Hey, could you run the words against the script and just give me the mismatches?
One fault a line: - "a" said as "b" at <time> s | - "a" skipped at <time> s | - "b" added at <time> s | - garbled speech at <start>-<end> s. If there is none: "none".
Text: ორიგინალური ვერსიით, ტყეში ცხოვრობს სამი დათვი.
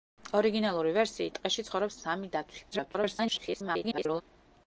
- garbled speech at 2.7-4.2 s